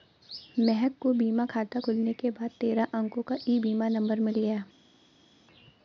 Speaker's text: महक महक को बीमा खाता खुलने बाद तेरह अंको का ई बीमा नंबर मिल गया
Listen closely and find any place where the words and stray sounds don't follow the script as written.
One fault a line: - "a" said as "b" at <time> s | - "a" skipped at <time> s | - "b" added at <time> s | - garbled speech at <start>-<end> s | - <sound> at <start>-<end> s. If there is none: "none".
- "महक" skipped at 0.9 s
- "के" added at 2.1 s